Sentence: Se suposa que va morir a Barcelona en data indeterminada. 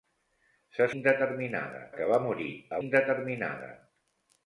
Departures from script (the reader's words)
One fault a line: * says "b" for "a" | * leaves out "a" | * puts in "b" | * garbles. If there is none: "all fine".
* says "indeterminada" for "suposa"
* leaves out "Barcelona en data"